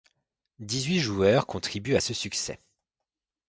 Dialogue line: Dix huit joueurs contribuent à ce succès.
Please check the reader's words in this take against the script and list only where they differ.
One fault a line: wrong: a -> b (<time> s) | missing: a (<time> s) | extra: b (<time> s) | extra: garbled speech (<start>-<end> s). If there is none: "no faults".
no faults